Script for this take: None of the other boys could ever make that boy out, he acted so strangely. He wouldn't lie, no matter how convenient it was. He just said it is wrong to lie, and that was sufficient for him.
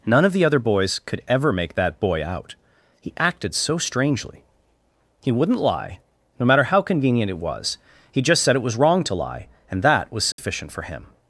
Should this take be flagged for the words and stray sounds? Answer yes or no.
yes